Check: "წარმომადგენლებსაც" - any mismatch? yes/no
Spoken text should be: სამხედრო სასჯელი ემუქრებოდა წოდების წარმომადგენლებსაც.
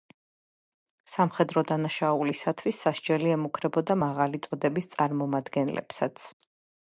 no